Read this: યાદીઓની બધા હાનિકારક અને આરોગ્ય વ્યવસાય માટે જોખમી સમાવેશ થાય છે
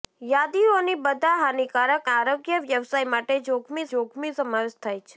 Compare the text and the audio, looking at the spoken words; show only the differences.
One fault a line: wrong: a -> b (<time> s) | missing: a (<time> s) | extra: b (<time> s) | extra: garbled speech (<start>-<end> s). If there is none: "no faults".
missing: અને (2.1 s)
extra: જોખમી (3.9 s)